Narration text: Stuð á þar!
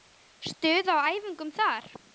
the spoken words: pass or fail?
fail